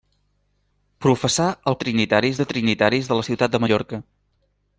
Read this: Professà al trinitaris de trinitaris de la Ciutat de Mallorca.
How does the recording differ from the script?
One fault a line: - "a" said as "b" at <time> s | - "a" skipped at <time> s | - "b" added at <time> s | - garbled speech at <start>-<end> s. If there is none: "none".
none